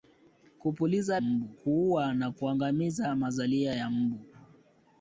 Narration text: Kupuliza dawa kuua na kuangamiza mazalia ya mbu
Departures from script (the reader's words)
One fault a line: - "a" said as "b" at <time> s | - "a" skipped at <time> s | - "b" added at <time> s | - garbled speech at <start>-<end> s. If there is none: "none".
- "dawa" said as "mbu" at 1.2 s